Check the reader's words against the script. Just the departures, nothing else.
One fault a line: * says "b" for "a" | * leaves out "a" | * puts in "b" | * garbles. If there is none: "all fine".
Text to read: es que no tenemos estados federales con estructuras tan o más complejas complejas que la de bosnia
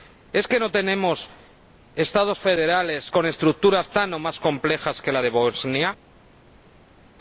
* leaves out "complejas"